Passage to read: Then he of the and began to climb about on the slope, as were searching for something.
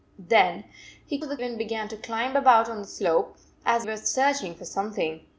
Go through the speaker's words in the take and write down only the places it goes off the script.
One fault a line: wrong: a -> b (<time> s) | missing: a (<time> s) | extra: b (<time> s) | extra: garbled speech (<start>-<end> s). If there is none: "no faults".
no faults